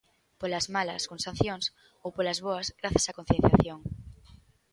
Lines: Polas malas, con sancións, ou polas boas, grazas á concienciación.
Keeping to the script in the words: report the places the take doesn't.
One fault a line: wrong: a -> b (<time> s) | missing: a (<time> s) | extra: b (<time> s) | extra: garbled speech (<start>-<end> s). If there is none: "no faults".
no faults